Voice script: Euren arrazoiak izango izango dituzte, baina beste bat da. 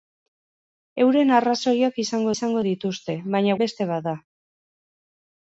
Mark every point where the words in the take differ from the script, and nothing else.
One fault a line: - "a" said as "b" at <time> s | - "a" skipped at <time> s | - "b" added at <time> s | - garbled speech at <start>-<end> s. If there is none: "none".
none